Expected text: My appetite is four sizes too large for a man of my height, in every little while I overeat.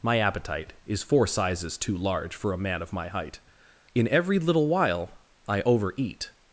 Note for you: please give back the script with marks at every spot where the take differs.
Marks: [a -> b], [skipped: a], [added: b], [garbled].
My appetite is four sizes too large for a man of my height, in every little while I overeat.